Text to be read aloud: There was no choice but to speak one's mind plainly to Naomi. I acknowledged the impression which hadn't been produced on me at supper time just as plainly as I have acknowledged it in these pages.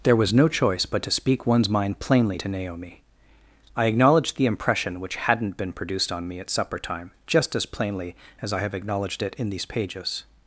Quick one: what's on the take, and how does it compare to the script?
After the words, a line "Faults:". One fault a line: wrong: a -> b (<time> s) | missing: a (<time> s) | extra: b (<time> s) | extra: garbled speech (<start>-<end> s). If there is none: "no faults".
There was no choice but to speak one's mind plainly to Naomi. I acknowledged the impression which hadn't been produced on me at supper time just as plainly as I have acknowledged it in these pages.
Faults:
no faults